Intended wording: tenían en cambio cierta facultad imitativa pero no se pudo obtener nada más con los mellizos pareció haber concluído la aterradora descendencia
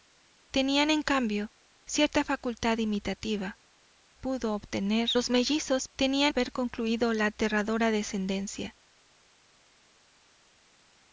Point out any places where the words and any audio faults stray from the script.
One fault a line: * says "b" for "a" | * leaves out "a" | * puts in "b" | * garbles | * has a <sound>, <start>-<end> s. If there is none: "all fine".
* leaves out "pero no se"
* leaves out "nada más con"
* says "tenían" for "pareció"